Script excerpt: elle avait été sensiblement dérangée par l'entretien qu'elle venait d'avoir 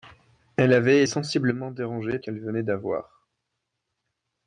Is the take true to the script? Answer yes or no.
no